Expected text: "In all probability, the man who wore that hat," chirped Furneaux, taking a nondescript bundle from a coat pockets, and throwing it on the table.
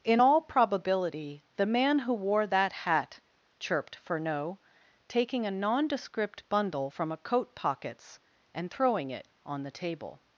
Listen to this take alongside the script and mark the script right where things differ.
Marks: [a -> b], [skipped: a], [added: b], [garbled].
"In all probability, the man who wore that hat," chirped Furneaux, taking a nondescript bundle from a coat pockets, and throwing it on the table.